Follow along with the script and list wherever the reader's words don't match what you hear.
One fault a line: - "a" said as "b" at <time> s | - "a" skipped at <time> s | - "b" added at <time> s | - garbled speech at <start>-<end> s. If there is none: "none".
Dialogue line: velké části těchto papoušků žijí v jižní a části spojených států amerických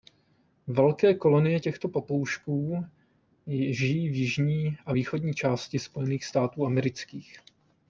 - "části" said as "kolonie" at 1.1 s
- "východní" added at 4.9 s